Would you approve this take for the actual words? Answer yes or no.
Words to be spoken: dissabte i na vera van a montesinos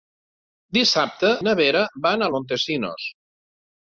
yes